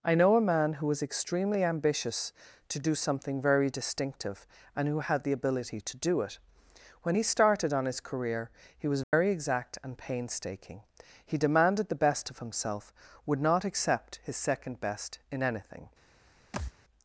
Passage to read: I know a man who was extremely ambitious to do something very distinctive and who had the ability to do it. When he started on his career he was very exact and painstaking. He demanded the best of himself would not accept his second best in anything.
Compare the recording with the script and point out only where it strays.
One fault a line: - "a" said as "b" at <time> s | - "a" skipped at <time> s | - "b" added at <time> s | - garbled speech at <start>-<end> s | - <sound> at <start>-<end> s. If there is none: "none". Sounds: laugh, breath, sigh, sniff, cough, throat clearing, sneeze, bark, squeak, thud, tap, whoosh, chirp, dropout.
- dropout at 9.0-9.1 s
- thud at 16.5-16.7 s